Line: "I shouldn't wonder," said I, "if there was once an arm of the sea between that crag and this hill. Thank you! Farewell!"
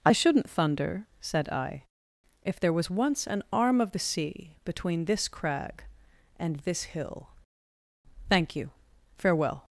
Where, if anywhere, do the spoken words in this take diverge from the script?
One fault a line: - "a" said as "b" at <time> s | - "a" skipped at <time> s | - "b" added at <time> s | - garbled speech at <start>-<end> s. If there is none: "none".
- "wonder" said as "thunder" at 0.5 s
- "that" said as "this" at 5.0 s